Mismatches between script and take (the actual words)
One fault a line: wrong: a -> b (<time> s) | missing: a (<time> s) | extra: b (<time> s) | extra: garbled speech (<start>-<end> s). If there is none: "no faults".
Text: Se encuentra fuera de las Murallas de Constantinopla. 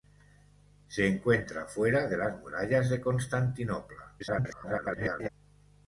extra: garbled speech (4.2-5.3 s)